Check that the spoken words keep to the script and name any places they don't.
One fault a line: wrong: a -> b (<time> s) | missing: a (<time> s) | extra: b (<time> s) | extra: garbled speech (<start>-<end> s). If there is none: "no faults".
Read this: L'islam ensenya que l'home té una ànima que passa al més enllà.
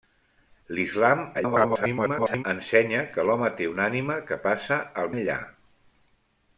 extra: garbled speech (1.3-2.4 s)
missing: més (5.1 s)